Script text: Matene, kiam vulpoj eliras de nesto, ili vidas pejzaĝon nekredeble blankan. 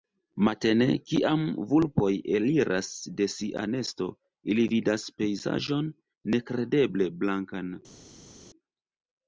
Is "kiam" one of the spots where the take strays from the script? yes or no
no